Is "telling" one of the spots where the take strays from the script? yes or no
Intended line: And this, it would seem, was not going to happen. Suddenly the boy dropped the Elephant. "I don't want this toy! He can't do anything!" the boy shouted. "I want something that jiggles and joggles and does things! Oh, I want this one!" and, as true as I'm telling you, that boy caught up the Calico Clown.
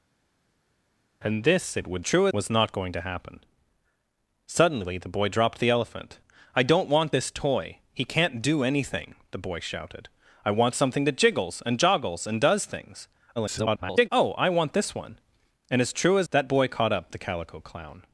yes